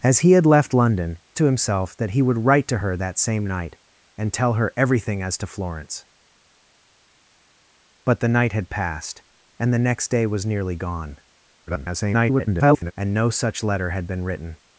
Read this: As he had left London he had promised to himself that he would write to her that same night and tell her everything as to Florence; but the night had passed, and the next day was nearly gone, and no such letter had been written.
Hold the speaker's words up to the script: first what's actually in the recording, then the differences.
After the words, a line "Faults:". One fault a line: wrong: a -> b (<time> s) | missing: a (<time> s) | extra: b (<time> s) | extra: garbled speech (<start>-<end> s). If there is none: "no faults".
As he had left London to himself that he would write to her that same night and tell her everything as to Florence; but the night had passed, and the next day was nearly gone, [garbled] and no such letter had been written.
Faults:
missing: he had promised (1.2 s)
extra: garbled speech (11.7-12.9 s)